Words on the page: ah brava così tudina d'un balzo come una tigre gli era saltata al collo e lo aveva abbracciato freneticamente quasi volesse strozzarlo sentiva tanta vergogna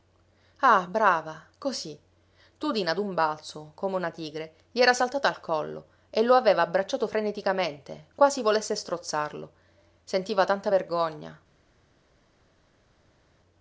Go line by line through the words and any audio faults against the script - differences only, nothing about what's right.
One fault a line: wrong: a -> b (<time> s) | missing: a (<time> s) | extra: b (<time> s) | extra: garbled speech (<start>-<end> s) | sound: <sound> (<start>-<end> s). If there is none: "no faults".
no faults